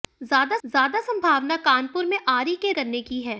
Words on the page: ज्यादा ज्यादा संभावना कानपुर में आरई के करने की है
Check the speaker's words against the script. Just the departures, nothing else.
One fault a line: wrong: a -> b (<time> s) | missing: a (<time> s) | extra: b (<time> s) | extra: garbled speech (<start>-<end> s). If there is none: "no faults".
no faults